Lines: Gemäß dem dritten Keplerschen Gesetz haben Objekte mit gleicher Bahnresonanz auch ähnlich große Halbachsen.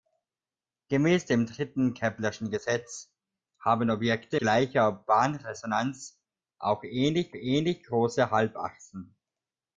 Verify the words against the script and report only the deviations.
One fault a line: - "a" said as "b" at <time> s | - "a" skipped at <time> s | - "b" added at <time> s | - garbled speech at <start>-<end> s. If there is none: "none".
- "mit" skipped at 4.4 s
- "ähnlich" added at 7.3 s